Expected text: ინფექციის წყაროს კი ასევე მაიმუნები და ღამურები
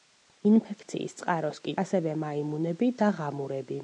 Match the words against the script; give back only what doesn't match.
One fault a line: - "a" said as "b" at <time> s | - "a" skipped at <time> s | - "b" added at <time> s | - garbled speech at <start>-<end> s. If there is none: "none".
none